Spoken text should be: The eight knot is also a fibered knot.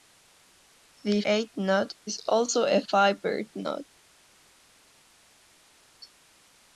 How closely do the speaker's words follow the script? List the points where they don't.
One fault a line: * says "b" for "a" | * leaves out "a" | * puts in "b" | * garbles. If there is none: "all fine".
all fine